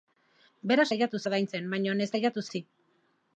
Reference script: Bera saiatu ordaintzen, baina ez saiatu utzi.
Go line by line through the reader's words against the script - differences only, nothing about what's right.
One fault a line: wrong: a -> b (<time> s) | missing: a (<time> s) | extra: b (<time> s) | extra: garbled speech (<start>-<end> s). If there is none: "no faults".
no faults